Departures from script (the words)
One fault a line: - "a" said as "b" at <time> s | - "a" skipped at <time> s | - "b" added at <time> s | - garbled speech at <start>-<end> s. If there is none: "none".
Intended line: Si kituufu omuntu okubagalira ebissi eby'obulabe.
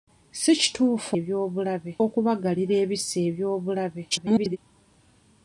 - "omuntu" said as "eby'obulabe" at 1.2 s
- garbled speech at 4.1-4.6 s